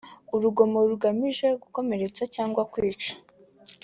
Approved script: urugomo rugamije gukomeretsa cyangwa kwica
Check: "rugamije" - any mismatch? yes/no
no